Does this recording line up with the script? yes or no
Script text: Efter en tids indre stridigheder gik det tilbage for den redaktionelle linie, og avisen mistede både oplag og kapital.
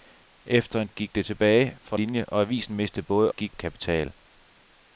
no